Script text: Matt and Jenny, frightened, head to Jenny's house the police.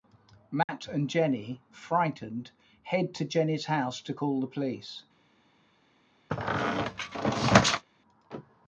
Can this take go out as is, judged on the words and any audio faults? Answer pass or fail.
fail